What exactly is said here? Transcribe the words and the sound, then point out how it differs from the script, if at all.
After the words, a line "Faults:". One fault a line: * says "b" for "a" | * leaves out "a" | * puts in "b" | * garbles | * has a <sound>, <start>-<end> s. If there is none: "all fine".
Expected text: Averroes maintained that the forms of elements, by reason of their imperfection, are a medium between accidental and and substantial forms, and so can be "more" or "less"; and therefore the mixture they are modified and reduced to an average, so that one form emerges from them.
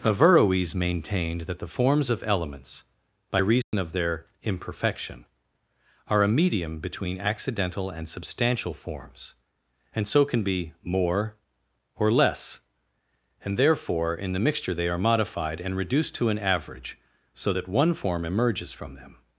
Averroes maintained that the forms of elements, by reason of their imperfection, are a medium between accidental and substantial forms, and so can be "more" or "less"; and therefore in the mixture they are modified and reduced to an average, so that one form emerges from them.
Faults:
* has a dropout, 3.6-3.7 s
* leaves out "and"
* puts in "in"